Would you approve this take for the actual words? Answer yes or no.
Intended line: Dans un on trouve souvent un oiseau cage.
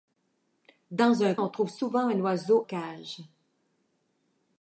yes